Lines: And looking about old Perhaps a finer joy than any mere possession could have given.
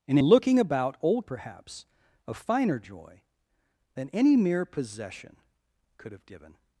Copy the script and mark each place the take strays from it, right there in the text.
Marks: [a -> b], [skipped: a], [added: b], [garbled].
And looking about old Perhaps a finer joy than any mere possession could have given.